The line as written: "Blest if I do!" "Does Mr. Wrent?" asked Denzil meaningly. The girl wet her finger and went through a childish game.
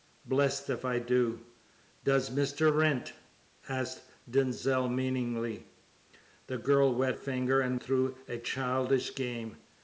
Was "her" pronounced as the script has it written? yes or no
no